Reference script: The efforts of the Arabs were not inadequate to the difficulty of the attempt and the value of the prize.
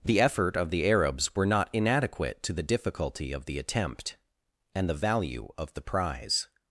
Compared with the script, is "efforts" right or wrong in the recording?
wrong